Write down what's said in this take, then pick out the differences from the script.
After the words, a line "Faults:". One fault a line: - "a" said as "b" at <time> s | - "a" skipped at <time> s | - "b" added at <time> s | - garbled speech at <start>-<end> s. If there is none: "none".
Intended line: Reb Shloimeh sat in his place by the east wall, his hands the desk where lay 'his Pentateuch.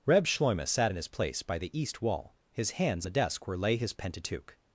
Reb Shloimeh sat in his place by the east wall, his hands the desk where lay 'his Pentateuch.
Faults:
none